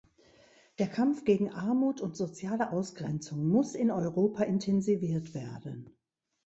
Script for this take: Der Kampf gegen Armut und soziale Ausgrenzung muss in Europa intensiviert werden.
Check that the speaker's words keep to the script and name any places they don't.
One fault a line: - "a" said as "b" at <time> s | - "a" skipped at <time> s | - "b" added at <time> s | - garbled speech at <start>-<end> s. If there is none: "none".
none